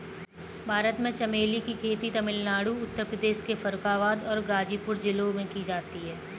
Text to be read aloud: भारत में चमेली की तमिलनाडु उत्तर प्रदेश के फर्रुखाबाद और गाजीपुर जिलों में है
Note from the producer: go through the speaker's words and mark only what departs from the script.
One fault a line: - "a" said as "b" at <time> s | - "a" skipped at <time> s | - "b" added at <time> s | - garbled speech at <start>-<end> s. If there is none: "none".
- "खेती" added at 1.8 s
- "की जाती" added at 5.5 s